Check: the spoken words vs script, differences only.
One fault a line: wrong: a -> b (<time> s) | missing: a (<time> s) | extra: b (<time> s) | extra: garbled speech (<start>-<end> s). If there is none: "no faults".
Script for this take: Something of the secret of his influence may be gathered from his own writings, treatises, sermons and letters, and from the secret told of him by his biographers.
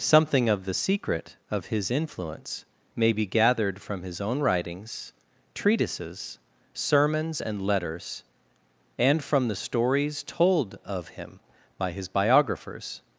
wrong: secret -> stories (9.5 s)